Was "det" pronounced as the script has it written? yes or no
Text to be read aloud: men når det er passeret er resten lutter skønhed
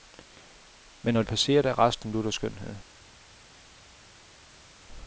no